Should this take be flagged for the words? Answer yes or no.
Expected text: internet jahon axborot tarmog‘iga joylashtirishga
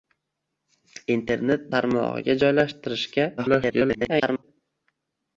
yes